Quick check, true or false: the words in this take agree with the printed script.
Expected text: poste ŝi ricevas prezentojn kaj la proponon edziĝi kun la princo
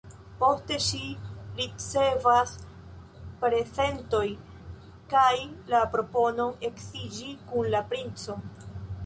true